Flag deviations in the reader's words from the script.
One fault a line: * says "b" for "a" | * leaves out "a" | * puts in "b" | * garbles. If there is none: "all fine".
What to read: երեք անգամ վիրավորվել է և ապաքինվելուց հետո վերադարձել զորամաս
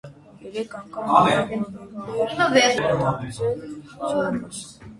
* leaves out "և ապաքինվելուց հետո"